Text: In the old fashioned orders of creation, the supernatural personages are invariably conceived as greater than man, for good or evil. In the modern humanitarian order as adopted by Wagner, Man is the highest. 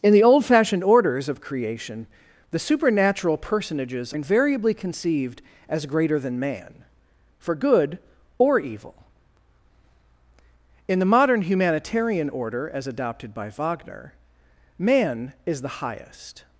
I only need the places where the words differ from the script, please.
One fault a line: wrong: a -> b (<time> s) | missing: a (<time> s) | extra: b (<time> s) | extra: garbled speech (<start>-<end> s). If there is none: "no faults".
missing: are (4.1 s)